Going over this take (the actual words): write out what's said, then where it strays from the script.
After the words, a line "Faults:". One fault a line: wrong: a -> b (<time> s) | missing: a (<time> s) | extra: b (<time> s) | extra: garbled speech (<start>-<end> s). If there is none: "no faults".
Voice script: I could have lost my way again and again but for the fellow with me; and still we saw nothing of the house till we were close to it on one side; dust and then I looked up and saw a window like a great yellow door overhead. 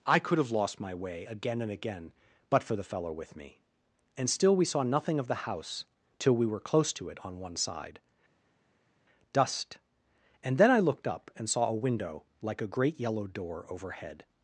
I could have lost my way again and again but for the fellow with me; and still we saw nothing of the house till we were close to it on one side; dust and then I looked up and saw a window like a great yellow door overhead.
Faults:
no faults